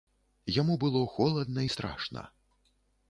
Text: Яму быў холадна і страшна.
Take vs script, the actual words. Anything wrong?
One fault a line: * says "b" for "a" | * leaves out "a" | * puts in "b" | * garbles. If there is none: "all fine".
* says "было" for "быў"